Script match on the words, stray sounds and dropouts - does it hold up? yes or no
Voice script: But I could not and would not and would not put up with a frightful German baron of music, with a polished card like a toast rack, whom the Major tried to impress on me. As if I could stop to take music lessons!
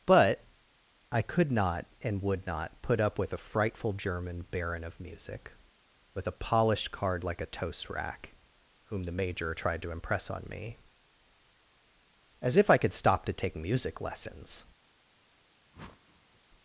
no